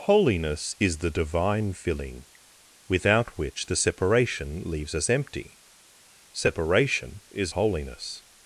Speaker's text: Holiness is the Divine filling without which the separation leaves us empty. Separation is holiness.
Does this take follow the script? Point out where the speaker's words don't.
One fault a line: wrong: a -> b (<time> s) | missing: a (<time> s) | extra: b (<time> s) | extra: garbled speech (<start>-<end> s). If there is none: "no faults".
no faults